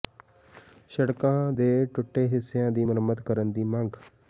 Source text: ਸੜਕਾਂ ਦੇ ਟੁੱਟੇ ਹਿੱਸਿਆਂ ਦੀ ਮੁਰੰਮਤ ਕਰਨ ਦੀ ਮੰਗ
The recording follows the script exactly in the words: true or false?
true